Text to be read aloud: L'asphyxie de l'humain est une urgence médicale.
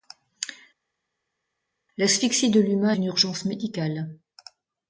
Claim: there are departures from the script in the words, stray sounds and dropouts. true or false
true